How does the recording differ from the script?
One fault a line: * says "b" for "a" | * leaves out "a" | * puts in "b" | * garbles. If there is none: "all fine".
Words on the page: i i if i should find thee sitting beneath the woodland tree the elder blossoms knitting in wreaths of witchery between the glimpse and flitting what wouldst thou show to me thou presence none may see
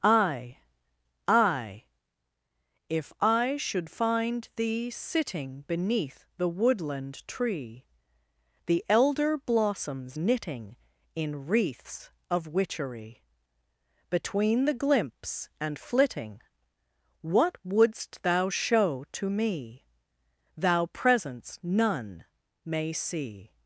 all fine